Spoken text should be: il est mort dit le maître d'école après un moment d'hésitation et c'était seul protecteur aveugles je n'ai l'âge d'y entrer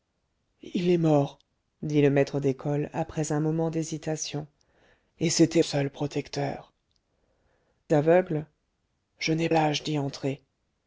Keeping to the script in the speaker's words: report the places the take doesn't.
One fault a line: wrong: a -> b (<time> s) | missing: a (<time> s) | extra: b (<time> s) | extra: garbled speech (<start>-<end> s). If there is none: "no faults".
no faults